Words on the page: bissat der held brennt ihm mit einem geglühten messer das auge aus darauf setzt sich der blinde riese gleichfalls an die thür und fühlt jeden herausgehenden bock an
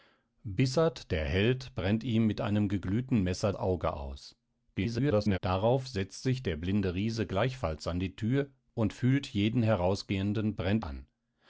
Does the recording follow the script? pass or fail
fail